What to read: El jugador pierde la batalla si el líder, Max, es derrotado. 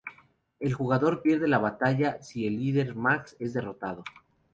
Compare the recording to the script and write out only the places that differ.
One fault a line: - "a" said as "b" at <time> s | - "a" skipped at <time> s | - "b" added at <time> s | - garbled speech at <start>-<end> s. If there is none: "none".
none